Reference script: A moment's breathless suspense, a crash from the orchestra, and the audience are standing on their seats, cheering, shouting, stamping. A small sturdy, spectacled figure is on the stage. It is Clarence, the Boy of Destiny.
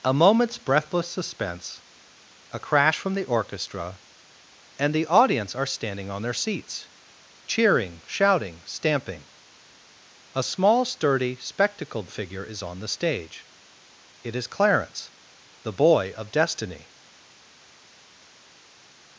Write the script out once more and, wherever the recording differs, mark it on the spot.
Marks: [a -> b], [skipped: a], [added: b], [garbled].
A moment's breathless suspense, a crash from the orchestra, and the audience are standing on their seats, cheering, shouting, stamping. A small sturdy, spectacled figure is on the stage. It is Clarence, the Boy of Destiny.